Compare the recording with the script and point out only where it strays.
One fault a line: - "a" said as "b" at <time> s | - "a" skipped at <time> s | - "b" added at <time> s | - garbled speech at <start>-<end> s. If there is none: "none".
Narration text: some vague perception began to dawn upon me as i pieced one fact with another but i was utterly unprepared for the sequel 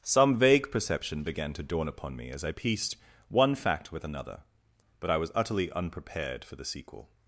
none